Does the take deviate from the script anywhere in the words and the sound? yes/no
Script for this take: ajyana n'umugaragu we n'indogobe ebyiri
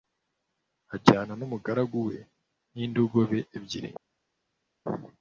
no